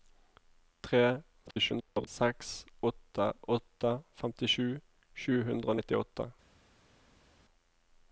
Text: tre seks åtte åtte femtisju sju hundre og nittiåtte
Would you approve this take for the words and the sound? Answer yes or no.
no